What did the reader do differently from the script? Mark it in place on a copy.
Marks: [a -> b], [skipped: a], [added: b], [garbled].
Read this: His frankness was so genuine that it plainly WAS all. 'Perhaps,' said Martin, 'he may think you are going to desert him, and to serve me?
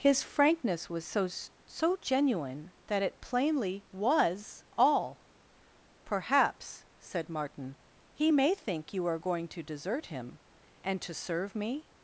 His frankness was so [added: so] genuine that it plainly WAS all. 'Perhaps,' said Martin, 'he may think you are going to desert him, and to serve me?